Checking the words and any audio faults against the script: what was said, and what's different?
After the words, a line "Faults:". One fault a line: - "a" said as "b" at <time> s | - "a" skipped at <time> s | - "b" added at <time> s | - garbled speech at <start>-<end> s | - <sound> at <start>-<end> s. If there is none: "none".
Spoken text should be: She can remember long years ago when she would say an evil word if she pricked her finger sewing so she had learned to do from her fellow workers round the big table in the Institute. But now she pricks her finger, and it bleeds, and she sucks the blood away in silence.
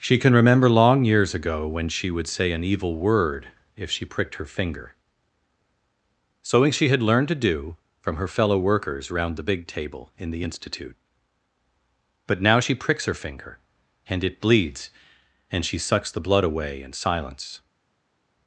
She can remember long years ago when she would say an evil word if she pricked her finger sewing she had learned to do from her fellow workers round the big table in the Institute. But now she pricks her finger, and it bleeds, and she sucks the blood away in silence.
Faults:
- "so" skipped at 6.7 s